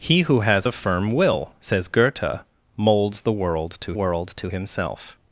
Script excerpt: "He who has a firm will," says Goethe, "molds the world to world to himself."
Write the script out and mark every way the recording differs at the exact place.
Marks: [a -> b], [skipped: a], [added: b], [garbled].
"He who has a firm will," says Goethe, "molds the world to world to himself."